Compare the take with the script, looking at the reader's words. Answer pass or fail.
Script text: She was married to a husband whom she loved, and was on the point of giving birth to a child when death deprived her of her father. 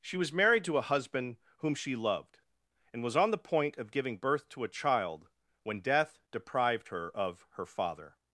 pass